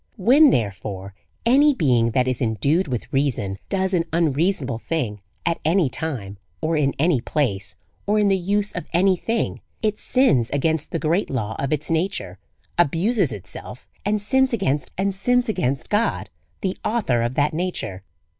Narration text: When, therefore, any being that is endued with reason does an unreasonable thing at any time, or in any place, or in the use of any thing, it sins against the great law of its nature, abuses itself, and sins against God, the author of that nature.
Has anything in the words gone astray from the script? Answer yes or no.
yes